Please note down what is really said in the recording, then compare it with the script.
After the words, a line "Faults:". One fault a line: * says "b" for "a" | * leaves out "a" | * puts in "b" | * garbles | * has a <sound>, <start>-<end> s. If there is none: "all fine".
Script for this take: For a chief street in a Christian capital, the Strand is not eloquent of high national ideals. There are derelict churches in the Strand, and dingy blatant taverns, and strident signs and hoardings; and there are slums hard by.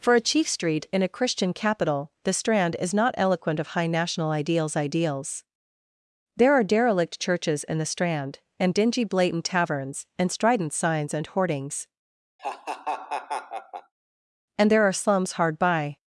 For a chief street in a Christian capital, the Strand is not eloquent of high national ideals ideals. There are derelict churches in the Strand, and dingy blatant taverns, and strident signs and hoardings; and there are slums hard by.
Faults:
* puts in "ideals"
* has a laugh, 12.4-13.9 s